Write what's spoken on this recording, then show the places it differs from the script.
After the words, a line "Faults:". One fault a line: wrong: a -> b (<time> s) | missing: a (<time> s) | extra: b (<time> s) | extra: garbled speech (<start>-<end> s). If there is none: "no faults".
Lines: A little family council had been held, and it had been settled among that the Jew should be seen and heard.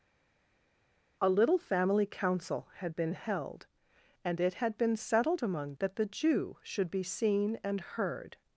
A little family council had been held, and it had been settled among that the Jew should be seen and heard.
Faults:
no faults